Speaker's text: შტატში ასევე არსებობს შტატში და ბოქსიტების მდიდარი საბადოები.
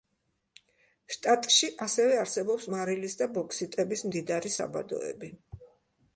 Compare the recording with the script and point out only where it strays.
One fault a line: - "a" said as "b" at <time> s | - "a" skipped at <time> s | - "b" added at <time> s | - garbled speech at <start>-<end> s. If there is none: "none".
- "შტატში" said as "მარილის" at 2.7 s